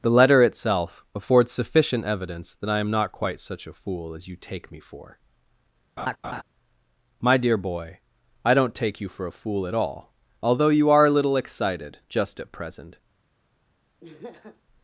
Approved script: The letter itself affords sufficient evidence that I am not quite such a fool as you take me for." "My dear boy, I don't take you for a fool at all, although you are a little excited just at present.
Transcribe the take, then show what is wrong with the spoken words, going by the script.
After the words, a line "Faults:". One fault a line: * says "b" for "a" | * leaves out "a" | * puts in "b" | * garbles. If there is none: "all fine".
The letter itself affords sufficient evidence that I am not quite such a fool as you take me for." "My dear boy, I don't take you for a fool at all, although you are a little excited just at present.
Faults:
all fine